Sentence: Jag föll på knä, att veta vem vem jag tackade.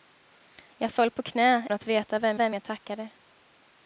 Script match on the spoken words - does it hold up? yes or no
yes